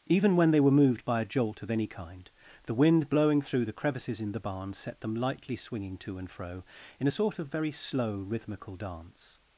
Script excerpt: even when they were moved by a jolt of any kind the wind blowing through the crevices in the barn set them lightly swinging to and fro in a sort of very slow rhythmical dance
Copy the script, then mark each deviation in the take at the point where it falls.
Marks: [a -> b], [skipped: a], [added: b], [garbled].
even when they were moved by a jolt of any kind the wind blowing through the crevices in the barn set them lightly swinging to and fro in a sort of very slow rhythmical dance